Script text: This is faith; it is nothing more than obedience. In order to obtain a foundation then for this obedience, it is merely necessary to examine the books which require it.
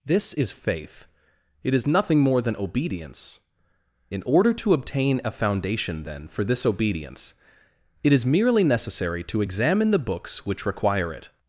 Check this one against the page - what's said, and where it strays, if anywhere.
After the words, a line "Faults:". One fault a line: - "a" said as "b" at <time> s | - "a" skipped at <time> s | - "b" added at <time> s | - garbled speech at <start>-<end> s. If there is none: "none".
This is faith; it is nothing more than obedience. In order to obtain a foundation then for this obedience, it is merely necessary to examine the books which require it.
Faults:
none